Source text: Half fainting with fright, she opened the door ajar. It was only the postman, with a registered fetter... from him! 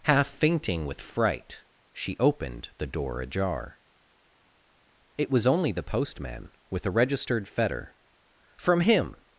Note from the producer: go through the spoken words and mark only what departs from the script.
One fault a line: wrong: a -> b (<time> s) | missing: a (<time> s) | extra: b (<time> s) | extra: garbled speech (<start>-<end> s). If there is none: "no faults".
no faults